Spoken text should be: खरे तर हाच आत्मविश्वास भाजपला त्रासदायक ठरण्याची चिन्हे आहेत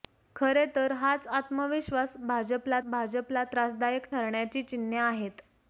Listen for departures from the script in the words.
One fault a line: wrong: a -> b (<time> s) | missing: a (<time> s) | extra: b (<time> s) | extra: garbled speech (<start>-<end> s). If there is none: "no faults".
extra: भाजपला (2.9 s)